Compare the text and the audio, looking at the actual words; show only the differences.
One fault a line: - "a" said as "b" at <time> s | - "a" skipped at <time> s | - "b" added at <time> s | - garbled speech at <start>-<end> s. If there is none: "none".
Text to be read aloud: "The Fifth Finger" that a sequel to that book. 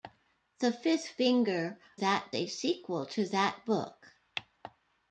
none